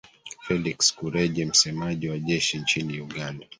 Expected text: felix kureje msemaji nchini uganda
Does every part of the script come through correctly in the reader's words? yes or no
no